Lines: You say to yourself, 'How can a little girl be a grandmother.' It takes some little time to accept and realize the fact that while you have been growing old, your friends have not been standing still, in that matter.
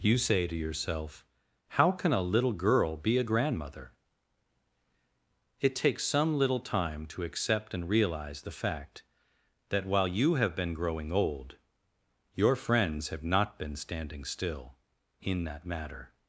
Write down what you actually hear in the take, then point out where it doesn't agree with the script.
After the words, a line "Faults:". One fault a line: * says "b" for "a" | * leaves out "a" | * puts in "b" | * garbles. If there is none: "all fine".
You say to yourself, 'How can a little girl be a grandmother.' It takes some little time to accept and realize the fact that while you have been growing old, your friends have not been standing still, in that matter.
Faults:
all fine